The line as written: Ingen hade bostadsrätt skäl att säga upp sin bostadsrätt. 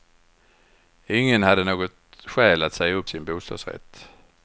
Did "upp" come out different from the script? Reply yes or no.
no